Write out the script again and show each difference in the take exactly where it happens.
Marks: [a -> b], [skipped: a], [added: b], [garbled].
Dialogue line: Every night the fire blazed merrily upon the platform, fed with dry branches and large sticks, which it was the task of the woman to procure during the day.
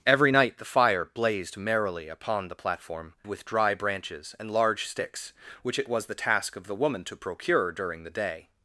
Every night the fire blazed merrily upon the platform, [skipped: fed] with dry branches and large sticks, which it was the task of the woman to procure during the day.